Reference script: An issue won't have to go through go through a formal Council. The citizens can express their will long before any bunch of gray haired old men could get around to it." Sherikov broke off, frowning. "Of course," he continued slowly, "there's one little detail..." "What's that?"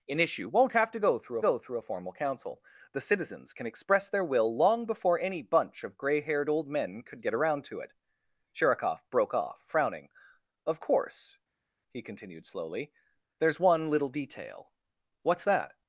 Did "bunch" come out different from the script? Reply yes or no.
no